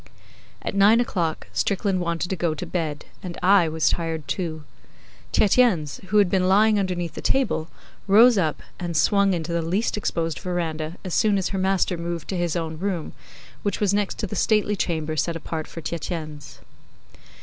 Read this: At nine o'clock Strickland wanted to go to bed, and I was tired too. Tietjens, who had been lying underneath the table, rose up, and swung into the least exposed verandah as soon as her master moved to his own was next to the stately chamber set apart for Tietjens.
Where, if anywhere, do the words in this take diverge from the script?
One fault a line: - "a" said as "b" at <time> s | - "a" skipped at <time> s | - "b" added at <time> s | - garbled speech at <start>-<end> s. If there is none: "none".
- "room which" added at 12.8 s